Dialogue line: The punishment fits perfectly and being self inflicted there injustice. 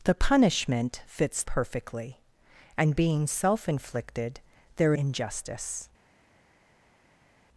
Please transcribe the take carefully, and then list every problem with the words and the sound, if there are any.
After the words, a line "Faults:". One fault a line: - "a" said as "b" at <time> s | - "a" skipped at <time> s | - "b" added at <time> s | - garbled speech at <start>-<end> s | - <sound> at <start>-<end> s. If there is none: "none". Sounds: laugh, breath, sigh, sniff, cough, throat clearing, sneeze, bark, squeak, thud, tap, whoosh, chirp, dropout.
The punishment fits perfectly and being self inflicted there injustice.
Faults:
none